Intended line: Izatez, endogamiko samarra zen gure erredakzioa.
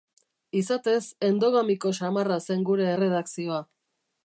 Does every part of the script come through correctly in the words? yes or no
yes